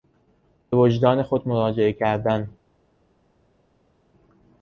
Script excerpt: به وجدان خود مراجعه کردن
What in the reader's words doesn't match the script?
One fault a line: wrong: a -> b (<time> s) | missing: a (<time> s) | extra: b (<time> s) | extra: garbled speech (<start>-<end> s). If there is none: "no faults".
no faults